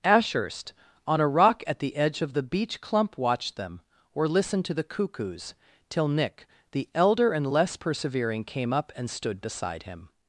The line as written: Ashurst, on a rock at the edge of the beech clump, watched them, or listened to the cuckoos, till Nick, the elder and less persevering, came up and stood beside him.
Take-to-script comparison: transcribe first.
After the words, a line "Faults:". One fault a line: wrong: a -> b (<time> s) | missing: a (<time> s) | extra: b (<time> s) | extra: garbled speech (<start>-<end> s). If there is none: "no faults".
Ashurst, on a rock at the edge of the beech clump, watched them, or listened to the cuckoos, till Nick, the elder and less persevering, came up and stood beside him.
Faults:
no faults